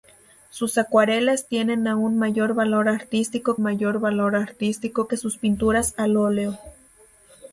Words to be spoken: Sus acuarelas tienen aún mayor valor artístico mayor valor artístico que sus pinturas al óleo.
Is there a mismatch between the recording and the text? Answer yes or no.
no